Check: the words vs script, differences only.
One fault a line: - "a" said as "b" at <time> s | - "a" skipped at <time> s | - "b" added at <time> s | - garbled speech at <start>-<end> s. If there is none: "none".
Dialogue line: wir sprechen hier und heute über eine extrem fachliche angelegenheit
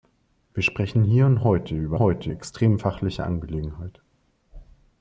- "eine" said as "heute" at 2.0 s